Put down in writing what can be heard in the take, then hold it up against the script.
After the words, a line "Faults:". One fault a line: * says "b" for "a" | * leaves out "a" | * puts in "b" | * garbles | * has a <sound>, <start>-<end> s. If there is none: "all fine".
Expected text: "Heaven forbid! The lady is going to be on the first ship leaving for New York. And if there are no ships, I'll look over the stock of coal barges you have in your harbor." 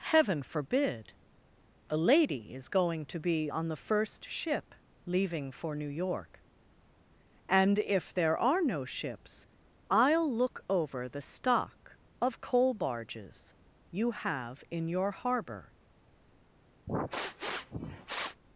"Heaven forbid! A lady is going to be on the first ship leaving for New York. And if there are no ships, I'll look over the stock of coal barges you have in your harbor."
Faults:
* says "A" for "The"
* has a sniff, 16.9-18.4 s